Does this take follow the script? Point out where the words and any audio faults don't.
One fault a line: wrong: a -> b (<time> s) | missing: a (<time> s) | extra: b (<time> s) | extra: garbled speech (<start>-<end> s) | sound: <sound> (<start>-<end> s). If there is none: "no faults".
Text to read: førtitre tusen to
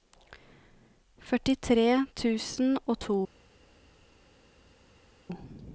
extra: og (2.9 s)